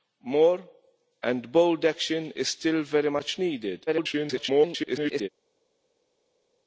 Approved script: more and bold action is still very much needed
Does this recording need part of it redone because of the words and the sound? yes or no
yes